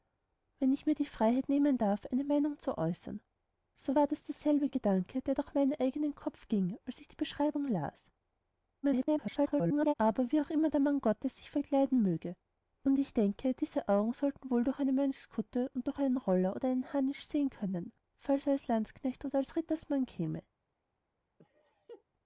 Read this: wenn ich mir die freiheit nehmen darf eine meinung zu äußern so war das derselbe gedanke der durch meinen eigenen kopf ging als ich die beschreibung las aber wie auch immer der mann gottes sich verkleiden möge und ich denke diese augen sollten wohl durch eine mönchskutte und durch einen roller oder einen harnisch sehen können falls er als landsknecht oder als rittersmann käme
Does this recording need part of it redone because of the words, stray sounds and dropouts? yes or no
yes